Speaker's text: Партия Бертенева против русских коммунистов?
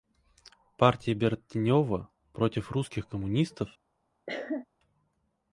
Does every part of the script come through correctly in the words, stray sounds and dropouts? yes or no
no